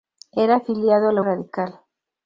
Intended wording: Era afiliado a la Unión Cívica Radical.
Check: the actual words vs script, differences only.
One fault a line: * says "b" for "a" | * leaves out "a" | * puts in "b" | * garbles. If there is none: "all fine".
* leaves out "Unión Cívica"